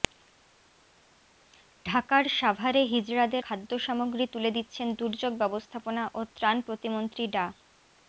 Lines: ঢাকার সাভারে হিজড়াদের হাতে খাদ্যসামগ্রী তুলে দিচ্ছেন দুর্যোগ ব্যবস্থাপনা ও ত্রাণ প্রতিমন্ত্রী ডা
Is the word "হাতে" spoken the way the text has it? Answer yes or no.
no